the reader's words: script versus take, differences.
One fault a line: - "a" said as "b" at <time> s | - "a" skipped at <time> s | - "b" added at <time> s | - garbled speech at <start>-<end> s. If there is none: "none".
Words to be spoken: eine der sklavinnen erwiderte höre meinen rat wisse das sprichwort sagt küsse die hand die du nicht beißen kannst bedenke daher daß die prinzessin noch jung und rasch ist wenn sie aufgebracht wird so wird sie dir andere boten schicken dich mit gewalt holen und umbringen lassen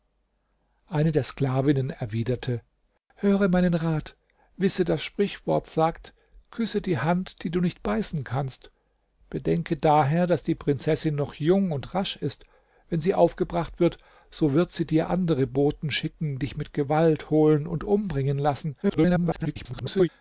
- garbled speech at 18.8-20.1 s